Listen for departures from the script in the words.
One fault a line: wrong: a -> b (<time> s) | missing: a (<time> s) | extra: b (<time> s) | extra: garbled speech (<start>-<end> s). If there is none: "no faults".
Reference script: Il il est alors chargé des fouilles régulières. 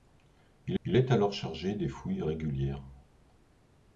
no faults